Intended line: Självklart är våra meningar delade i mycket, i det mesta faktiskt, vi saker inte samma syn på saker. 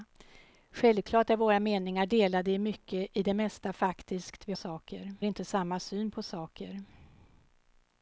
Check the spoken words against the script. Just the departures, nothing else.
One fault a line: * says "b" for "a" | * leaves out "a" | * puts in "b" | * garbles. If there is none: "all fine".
all fine